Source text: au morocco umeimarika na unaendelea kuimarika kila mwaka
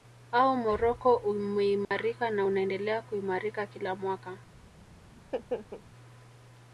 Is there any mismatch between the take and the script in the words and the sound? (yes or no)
yes